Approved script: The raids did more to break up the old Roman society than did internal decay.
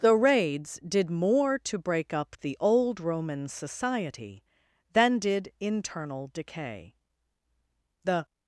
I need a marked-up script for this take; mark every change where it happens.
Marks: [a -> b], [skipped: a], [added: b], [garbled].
The raids did more to break up the old Roman society than did internal decay. [added: The]